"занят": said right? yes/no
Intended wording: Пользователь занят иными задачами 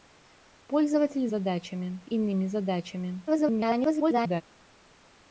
no